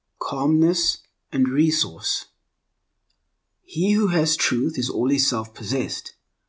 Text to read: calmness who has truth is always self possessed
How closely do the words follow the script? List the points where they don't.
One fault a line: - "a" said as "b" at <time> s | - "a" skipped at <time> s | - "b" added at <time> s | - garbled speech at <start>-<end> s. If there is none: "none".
- "and resource he" added at 1.3 s